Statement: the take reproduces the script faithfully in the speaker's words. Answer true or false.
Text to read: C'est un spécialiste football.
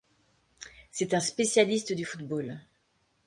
false